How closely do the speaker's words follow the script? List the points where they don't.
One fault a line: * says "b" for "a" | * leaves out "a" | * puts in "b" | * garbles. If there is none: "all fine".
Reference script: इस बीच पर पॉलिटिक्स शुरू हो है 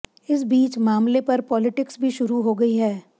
* puts in "मामले"
* puts in "भी"
* puts in "गई"